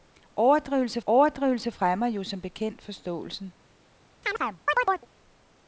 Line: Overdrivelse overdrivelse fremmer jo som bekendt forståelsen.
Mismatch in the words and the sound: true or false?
true